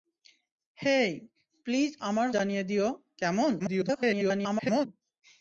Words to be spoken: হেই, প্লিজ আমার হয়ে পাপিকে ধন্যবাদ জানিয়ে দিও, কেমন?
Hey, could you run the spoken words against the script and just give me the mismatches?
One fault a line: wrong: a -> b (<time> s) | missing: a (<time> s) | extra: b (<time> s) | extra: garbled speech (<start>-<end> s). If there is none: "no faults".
missing: হয়ে পাপিকে ধন্যবাদ (2.3 s)
extra: garbled speech (3.6-4.9 s)